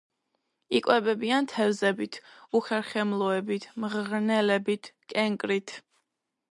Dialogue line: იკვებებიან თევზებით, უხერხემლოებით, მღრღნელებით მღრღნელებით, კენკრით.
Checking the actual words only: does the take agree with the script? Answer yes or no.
no